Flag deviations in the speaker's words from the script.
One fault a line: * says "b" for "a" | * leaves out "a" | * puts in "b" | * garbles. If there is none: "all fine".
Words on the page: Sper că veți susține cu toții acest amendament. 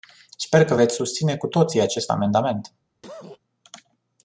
all fine